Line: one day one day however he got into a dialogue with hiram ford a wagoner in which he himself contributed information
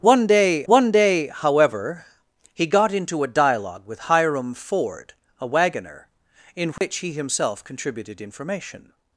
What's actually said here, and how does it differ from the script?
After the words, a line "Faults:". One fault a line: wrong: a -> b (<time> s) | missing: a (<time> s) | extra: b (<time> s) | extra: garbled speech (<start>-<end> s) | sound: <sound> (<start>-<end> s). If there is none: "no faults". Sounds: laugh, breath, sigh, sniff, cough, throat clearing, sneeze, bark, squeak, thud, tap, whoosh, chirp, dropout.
one day one day however he got into a dialogue with hiram ford a wagoner in which he himself contributed information
Faults:
sound: dropout (6.8-6.8 s)